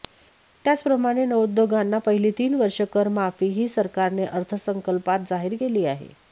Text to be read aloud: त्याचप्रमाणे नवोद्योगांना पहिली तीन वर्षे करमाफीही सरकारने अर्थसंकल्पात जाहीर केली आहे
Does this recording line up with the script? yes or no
yes